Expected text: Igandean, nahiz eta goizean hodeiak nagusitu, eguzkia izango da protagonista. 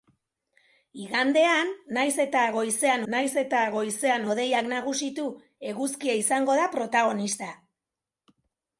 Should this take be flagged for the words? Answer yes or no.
yes